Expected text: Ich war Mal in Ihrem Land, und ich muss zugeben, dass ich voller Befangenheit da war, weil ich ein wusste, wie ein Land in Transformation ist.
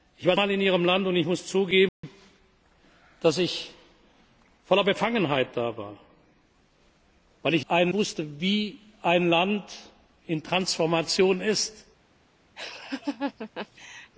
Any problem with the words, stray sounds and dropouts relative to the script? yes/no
yes